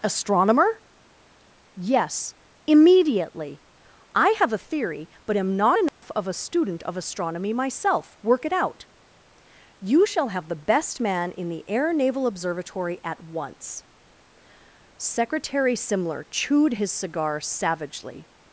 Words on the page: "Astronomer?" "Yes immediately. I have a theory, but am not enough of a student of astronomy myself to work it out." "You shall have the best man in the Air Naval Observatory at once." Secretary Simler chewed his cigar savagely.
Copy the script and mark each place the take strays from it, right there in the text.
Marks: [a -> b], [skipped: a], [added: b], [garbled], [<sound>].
"Astronomer?" "Yes immediately. I have a theory, but am not enough [dropout] of a student of astronomy myself [skipped: to] work it out." "You shall have the best man in the Air Naval Observatory at once." Secretary Simler chewed his cigar savagely.